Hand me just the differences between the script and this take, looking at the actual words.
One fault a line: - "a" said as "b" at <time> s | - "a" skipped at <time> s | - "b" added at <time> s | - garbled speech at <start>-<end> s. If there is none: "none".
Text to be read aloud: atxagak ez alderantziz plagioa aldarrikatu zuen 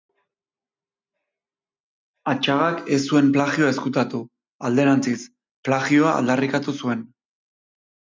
- "zuen plagioa ezkutatu" added at 3.1 s